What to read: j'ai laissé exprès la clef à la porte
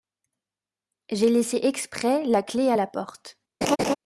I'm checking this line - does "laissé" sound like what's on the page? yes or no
yes